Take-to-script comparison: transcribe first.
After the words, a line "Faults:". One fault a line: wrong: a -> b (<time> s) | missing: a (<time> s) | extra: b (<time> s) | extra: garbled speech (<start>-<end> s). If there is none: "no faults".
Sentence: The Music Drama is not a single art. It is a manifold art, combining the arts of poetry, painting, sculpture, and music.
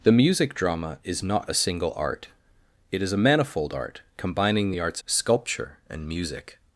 The Music Drama is not a single art. It is a manifold art, combining the arts sculpture, and music.
Faults:
missing: of poetry painting (5.0 s)